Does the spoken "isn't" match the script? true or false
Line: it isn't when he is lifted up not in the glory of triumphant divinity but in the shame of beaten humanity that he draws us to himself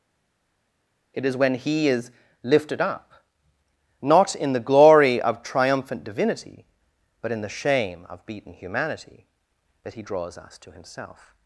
false